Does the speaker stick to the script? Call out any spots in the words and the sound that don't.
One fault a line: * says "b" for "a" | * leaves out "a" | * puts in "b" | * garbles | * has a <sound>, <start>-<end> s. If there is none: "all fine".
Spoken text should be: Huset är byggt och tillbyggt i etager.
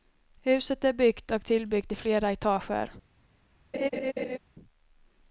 * puts in "flera"
* has a laugh, 3.7-4.4 s